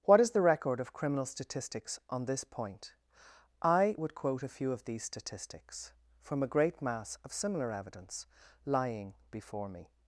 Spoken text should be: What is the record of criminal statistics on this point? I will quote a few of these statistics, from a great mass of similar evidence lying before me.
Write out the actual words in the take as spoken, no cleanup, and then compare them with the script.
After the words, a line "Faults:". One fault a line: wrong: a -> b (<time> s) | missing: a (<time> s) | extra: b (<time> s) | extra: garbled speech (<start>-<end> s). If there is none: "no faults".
What is the record of criminal statistics on this point? I would quote a few of these statistics, from a great mass of similar evidence lying before me.
Faults:
wrong: will -> would (4.0 s)